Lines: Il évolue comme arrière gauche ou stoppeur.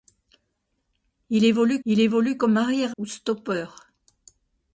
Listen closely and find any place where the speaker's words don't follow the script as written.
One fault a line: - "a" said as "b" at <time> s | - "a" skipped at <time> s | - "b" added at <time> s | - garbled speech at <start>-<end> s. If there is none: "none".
- "il évolue" added at 1.8 s
- "gauche" skipped at 3.0 s